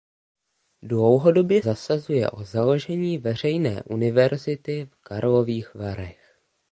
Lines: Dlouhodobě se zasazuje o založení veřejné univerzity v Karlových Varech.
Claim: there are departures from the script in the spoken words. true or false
true